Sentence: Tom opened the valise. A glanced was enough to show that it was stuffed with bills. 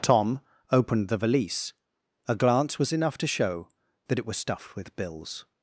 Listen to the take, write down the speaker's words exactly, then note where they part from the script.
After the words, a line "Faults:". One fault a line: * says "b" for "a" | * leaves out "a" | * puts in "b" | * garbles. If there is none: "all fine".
Tom opened the valise. A glance was enough to show that it was stuffed with bills.
Faults:
* says "glance" for "glanced"